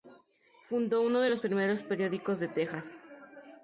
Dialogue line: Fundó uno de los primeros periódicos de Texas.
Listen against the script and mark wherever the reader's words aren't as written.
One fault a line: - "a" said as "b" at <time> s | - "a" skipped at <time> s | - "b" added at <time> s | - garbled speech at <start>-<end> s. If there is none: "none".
none